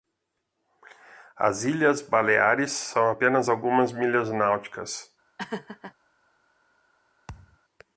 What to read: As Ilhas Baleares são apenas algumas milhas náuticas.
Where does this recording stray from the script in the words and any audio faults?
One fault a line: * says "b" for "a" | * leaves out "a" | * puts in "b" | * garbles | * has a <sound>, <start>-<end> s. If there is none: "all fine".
* has a laugh, 5.4-5.9 s
* has a thud, 7.3-7.6 s